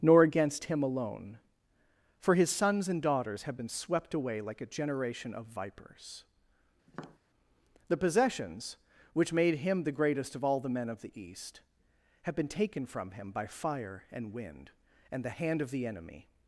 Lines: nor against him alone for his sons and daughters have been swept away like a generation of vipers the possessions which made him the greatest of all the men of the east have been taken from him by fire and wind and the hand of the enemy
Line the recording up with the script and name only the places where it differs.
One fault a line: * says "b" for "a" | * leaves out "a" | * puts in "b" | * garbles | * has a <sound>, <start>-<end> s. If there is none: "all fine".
* has a tap, 6.9-7.2 s